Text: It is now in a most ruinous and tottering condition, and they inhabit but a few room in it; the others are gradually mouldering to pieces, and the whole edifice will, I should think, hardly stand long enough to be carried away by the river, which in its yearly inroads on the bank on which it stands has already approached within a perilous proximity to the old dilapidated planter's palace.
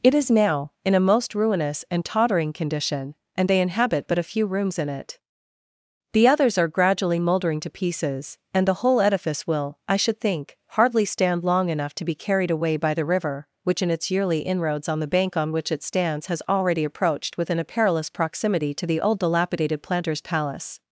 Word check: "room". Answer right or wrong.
wrong